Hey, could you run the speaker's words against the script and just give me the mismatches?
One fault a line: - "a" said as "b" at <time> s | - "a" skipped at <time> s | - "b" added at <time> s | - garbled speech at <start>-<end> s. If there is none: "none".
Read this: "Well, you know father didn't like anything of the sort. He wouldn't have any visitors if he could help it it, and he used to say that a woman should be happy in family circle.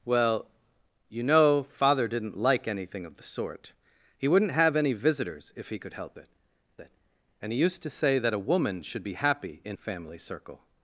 none